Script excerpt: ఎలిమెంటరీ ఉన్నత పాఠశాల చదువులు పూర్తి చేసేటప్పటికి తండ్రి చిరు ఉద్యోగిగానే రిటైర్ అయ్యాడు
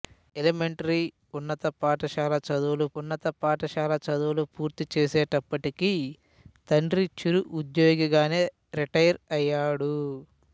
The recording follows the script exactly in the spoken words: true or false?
false